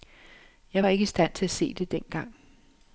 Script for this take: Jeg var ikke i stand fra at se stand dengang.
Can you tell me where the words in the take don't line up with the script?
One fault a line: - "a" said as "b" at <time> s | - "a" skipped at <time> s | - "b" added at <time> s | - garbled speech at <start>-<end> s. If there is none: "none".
- "fra" said as "til" at 1.3 s
- "stand" said as "det" at 1.7 s